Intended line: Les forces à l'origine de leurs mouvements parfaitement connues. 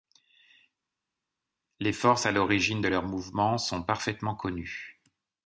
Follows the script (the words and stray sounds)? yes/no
no